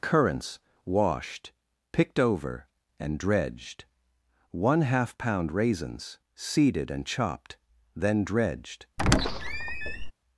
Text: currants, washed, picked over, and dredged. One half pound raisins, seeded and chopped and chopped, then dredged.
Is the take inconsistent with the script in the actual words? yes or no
yes